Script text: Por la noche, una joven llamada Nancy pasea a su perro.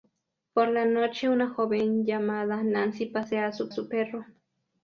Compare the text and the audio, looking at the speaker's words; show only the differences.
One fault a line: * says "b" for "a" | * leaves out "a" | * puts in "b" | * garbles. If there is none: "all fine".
* puts in "su"